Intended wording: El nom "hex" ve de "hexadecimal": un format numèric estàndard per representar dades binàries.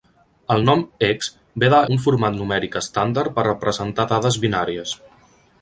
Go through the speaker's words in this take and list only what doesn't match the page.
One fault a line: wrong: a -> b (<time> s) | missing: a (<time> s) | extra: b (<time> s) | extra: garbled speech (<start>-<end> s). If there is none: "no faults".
missing: hexadecimal (1.8 s)